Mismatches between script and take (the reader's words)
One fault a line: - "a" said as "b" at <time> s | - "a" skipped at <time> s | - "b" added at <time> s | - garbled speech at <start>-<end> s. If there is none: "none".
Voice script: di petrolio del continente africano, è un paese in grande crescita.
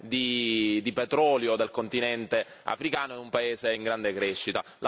none